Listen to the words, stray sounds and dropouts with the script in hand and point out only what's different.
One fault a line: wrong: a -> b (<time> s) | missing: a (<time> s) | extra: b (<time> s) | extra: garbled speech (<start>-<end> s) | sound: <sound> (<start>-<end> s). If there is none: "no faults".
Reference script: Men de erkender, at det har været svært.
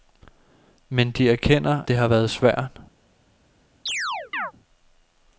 missing: at (1.8 s)
sound: chirp (3.9-4.5 s)